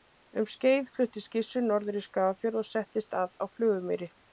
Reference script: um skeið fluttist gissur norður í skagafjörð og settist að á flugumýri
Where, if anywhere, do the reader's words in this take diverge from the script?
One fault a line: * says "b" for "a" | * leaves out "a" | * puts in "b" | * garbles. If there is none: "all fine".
all fine